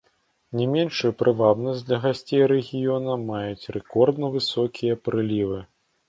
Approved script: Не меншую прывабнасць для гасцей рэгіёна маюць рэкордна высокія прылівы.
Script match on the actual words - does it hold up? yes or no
yes